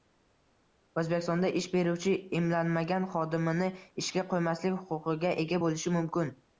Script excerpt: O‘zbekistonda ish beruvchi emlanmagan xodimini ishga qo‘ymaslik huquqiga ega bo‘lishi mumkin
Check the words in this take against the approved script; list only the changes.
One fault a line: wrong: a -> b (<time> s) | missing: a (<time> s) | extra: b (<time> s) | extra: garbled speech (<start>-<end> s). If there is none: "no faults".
no faults